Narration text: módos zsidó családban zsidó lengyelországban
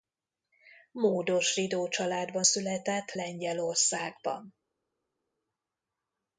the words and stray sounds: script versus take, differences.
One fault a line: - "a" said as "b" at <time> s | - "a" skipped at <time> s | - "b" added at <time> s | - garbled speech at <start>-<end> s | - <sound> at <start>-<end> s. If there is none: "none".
- "zsidó" said as "született" at 2.4 s